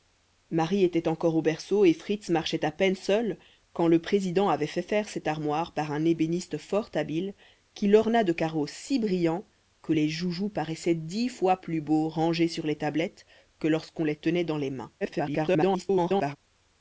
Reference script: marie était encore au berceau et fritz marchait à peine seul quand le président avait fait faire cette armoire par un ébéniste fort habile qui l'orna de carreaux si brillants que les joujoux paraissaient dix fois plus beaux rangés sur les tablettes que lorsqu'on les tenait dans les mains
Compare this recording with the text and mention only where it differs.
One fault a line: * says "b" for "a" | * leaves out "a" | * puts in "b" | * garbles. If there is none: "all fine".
* garbles